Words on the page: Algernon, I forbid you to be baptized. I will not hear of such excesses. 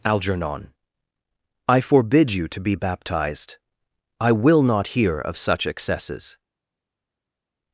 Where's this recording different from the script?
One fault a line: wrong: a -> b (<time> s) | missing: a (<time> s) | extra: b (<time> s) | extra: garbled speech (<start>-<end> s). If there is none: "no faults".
no faults